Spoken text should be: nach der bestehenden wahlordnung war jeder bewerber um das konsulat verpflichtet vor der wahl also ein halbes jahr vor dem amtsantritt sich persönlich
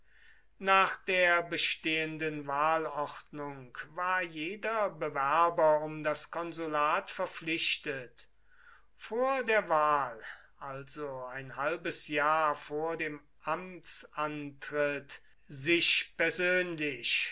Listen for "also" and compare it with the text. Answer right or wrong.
right